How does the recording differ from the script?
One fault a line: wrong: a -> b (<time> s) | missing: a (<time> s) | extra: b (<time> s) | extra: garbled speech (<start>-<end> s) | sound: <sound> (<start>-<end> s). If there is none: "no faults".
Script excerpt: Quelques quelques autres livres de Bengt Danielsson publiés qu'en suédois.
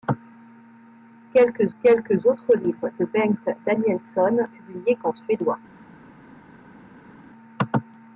no faults